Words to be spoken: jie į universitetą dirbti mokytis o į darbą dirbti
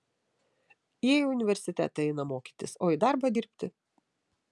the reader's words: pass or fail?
fail